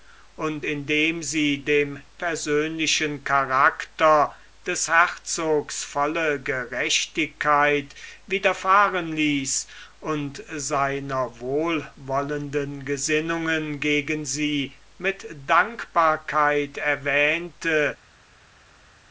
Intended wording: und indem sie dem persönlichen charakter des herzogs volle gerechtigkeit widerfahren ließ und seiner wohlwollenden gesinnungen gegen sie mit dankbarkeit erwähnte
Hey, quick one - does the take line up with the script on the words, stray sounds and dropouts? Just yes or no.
yes